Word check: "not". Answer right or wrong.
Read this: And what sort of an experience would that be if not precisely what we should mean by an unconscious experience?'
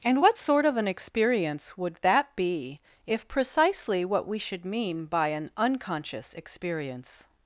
wrong